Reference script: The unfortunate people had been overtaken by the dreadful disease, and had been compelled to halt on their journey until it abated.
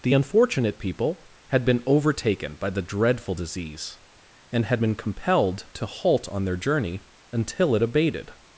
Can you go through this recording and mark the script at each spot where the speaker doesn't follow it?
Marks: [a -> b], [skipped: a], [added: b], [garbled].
The unfortunate people had been overtaken by the dreadful disease, and had been compelled to halt on their journey until it abated.